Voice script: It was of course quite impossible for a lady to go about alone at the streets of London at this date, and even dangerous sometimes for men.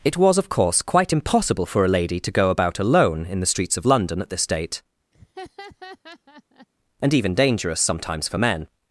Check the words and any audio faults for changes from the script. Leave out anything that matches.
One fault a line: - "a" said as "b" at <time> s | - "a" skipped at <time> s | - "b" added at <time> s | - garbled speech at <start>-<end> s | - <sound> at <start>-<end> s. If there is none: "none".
- "at" said as "in" at 3.2 s
- laugh at 5.1-6.7 s